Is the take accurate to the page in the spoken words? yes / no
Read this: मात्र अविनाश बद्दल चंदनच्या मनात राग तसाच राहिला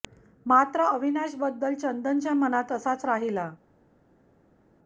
no